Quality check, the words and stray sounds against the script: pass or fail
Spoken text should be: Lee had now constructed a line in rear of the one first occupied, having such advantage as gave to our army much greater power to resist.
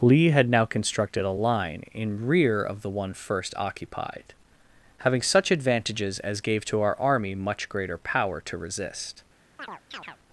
fail